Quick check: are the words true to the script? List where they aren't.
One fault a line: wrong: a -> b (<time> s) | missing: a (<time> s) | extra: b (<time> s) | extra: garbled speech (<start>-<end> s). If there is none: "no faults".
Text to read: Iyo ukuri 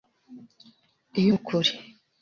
no faults